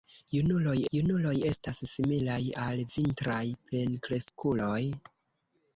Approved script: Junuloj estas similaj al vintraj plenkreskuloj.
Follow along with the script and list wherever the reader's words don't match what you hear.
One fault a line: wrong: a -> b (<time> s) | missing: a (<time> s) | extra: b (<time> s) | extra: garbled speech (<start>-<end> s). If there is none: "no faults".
extra: junuloj (0.9 s)